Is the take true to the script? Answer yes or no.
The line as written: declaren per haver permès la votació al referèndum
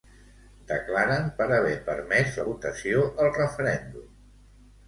yes